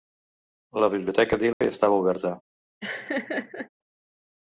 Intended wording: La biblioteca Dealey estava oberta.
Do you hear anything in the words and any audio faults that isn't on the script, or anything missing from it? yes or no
yes